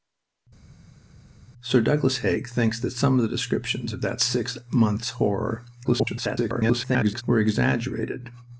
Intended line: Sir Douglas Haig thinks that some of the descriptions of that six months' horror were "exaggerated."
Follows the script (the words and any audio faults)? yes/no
no